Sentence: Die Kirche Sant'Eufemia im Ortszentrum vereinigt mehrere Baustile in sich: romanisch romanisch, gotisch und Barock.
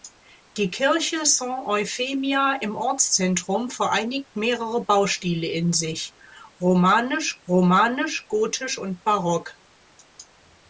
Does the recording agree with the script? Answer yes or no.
yes